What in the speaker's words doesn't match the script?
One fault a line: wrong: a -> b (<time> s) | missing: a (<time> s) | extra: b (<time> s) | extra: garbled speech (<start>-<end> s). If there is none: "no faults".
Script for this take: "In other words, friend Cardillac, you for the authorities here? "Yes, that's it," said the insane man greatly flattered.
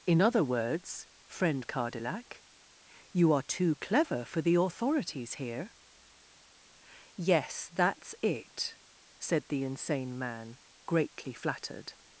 extra: are too clever (3.3 s)